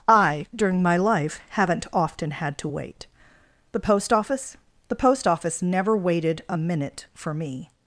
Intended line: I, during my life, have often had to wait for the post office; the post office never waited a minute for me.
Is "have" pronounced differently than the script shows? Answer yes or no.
yes